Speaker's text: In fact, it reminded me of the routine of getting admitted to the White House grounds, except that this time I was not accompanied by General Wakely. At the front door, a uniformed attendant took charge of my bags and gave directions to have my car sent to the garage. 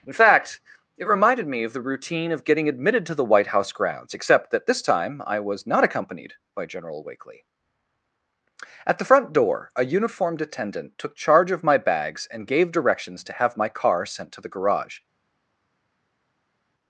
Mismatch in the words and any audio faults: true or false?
false